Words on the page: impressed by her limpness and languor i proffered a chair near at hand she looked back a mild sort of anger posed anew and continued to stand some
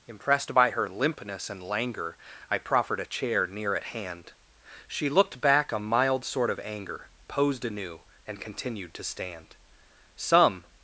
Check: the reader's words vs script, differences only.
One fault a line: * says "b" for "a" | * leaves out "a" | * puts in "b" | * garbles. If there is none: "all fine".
all fine